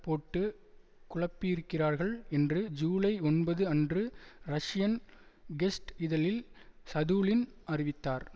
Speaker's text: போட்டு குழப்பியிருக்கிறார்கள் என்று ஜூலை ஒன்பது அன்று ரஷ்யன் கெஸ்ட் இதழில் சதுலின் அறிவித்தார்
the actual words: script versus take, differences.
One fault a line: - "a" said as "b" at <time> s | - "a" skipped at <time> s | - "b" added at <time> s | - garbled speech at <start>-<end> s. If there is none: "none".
none